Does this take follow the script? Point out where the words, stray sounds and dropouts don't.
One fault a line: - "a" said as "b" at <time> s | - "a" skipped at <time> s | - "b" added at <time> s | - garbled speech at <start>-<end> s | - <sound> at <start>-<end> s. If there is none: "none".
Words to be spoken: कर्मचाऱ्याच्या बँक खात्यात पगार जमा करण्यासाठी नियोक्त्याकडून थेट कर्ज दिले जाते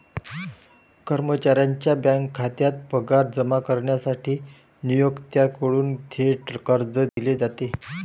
- dropout at 7.1-7.2 s